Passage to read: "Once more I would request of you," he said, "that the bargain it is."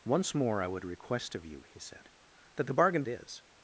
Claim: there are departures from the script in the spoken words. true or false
false